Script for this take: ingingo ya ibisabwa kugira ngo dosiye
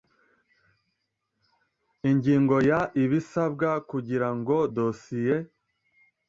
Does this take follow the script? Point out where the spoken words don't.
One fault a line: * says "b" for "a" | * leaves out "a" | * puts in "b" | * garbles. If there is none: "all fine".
all fine